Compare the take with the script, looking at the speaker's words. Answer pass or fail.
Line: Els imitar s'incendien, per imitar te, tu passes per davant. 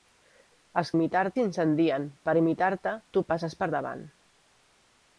pass